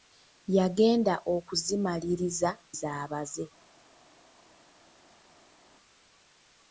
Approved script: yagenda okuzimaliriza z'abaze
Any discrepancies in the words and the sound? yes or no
no